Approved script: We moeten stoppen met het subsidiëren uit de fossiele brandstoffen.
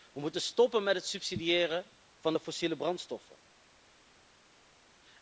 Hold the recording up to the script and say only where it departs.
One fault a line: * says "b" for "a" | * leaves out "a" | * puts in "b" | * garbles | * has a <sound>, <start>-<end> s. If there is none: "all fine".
* says "van" for "uit"